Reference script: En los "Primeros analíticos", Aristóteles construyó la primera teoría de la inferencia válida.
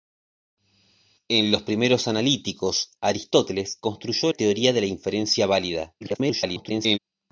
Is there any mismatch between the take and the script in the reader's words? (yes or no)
yes